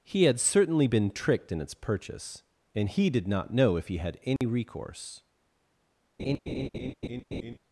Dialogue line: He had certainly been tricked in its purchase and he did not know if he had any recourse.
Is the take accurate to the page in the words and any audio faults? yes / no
no